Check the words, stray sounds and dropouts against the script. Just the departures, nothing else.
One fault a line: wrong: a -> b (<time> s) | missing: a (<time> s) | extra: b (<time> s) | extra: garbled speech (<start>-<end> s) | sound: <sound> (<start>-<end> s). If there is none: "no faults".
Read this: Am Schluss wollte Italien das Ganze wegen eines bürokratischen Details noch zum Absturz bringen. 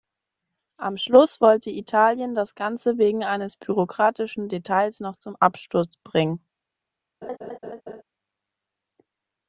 sound: laugh (7.2-8.0 s)